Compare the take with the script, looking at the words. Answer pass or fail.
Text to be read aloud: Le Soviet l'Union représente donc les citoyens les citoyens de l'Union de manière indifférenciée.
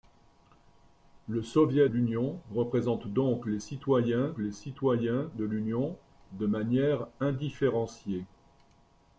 pass